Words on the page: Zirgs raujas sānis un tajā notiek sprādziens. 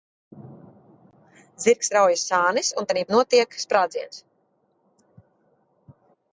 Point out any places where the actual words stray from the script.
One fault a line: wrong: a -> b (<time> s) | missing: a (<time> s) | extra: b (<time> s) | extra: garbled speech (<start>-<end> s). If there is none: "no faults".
no faults